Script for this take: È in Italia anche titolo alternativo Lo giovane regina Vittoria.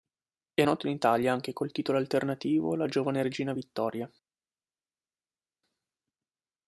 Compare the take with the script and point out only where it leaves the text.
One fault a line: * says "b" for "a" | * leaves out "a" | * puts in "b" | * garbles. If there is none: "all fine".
* puts in "noto"
* puts in "col"
* says "La" for "Lo"